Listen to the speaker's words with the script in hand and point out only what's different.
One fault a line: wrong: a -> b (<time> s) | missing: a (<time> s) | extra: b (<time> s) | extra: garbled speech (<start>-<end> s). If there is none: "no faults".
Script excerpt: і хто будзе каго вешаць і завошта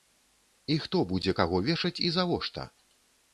no faults